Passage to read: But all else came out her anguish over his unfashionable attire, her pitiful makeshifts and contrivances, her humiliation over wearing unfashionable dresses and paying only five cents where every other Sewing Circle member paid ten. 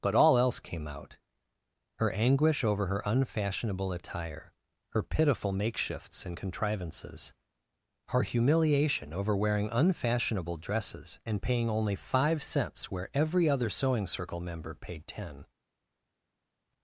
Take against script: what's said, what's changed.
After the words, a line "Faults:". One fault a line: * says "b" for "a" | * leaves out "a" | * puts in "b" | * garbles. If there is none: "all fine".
But all else came out her anguish over her unfashionable attire, her pitiful makeshifts and contrivances, her humiliation over wearing unfashionable dresses and paying only five cents where every other Sewing Circle member paid ten.
Faults:
* says "her" for "his"